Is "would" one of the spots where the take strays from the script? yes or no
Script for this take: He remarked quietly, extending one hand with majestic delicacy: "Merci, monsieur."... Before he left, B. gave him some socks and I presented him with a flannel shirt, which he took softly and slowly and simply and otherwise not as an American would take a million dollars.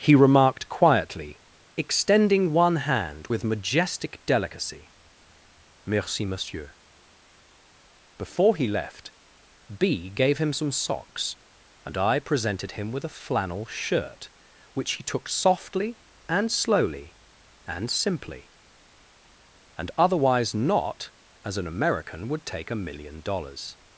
no